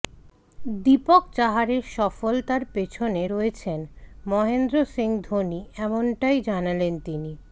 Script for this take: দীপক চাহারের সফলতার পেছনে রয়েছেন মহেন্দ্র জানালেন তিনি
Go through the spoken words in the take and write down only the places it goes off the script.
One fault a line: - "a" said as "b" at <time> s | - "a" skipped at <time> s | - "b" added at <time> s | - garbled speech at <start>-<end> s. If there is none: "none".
- "সিং ধোনি এমনটাই" added at 4.9 s